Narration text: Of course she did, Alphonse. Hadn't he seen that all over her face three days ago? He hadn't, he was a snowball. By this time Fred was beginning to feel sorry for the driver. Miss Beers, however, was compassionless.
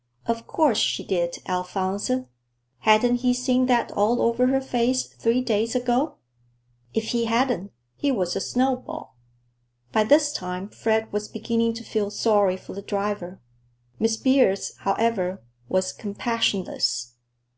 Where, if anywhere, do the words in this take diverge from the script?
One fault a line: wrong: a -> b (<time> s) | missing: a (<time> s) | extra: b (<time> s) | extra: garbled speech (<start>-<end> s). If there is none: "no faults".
extra: If (7.0 s)